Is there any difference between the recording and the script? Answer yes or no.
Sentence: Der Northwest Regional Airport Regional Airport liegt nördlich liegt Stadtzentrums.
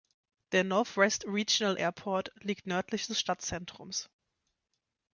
yes